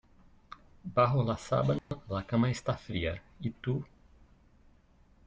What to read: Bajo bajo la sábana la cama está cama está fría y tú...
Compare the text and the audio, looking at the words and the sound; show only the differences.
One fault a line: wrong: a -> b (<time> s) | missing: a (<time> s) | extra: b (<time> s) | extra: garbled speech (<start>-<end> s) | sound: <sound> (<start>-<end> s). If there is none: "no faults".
missing: bajo (1.2 s)
sound: dropout (1.8-1.9 s)
missing: cama está (2.8 s)